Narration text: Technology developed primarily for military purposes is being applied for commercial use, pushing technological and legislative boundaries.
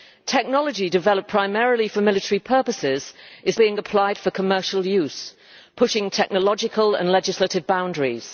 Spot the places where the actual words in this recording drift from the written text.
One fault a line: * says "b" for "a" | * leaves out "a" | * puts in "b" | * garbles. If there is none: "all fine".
all fine